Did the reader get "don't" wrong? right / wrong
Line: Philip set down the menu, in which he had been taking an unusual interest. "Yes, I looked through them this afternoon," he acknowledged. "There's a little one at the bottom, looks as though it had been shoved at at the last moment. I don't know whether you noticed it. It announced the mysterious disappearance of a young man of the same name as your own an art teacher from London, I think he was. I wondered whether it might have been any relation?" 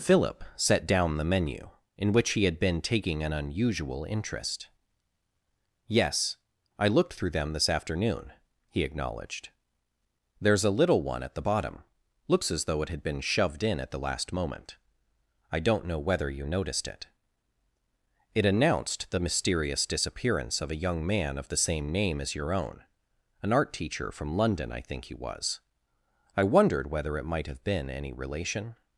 right